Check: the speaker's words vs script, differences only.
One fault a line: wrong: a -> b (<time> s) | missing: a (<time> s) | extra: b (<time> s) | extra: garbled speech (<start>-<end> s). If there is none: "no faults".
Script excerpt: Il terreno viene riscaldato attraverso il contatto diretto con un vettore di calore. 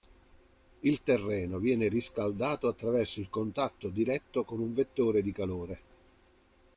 no faults